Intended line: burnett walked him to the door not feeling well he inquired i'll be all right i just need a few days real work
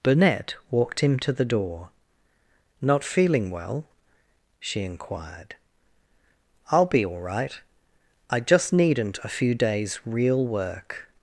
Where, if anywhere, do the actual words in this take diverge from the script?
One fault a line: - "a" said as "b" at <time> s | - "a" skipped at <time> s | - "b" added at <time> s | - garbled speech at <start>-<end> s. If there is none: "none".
- "he" said as "she" at 4.6 s
- "need" said as "needn't" at 8.7 s